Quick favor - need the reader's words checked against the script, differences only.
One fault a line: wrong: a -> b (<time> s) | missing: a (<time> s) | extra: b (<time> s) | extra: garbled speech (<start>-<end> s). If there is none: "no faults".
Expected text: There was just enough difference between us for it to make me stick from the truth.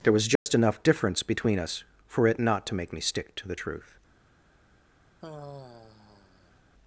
extra: not (2.4 s)
wrong: from -> to (3.4 s)